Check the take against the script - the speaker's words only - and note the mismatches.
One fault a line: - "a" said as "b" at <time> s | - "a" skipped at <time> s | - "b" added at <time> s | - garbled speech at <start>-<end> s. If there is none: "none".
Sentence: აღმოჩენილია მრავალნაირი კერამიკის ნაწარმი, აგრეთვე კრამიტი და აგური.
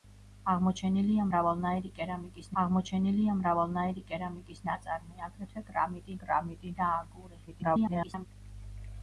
- "აღმოჩენილია მრავალნაირი კერამიკის" added at 2.6 s
- "კრამიტი" added at 6.2 s
- garbled speech at 7.5-8.3 s